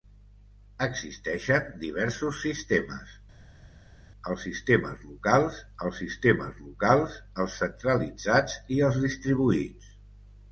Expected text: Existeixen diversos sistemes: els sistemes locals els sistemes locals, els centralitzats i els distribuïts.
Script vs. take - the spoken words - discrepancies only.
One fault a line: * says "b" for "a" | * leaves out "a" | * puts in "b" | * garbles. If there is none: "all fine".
all fine